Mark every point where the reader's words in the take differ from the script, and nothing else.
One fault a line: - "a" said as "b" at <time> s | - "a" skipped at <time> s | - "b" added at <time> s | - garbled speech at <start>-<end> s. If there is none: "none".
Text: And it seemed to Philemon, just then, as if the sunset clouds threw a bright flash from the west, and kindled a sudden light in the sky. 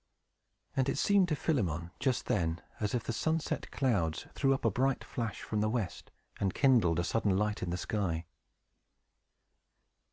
- "up" added at 4.5 s